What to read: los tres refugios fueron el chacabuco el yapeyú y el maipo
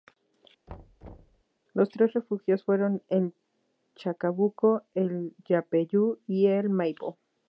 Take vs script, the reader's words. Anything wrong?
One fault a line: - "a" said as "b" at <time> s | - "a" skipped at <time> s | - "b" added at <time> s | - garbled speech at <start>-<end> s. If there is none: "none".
none